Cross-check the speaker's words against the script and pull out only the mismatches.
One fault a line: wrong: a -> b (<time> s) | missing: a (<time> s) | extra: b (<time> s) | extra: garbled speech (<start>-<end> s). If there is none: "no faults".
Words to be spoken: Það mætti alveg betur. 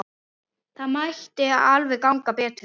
extra: ganga (2.1 s)